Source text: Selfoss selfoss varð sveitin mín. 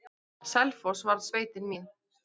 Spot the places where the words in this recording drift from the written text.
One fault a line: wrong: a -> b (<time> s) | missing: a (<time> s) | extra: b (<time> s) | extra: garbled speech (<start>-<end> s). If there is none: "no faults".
missing: selfoss (1.1 s)